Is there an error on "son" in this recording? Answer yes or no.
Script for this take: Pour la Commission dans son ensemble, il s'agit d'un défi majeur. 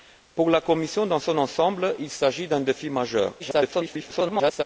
no